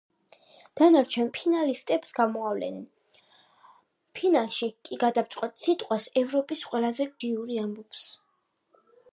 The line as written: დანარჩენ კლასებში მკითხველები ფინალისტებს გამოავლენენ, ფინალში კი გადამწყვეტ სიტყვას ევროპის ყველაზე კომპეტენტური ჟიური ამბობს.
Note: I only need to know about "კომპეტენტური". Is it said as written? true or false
false